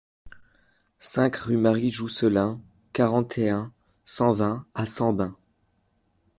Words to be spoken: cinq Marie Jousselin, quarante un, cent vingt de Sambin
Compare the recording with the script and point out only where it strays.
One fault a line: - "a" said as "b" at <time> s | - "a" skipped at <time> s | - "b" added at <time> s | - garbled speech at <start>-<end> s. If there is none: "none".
- "rue" added at 1.4 s
- "et" added at 3.4 s
- "de" said as "à" at 4.7 s